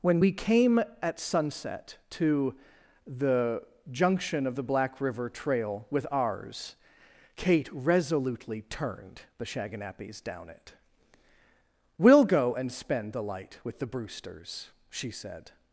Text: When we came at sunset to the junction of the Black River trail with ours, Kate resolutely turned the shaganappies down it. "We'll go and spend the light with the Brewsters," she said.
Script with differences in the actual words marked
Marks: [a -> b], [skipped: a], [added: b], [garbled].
When we came at sunset to the junction of the Black River trail with ours, Kate resolutely turned the shaganappies down it. "We'll go and spend the light with the Brewsters," she said.